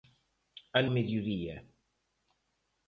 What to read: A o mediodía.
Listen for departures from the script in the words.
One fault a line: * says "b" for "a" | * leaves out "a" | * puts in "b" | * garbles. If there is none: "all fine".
all fine